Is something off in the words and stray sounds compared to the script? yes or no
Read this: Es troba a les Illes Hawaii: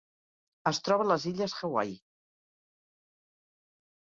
no